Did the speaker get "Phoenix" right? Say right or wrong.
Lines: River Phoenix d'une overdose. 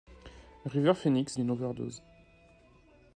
right